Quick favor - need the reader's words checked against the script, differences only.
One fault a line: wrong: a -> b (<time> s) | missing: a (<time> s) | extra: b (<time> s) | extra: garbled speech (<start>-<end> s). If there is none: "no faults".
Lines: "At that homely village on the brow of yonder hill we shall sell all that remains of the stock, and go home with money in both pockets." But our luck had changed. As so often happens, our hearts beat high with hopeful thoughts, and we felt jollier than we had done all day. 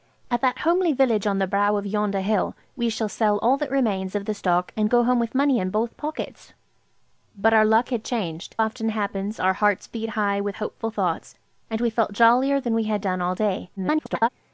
missing: As so (8.6 s)
extra: garbled speech (13.8-14.3 s)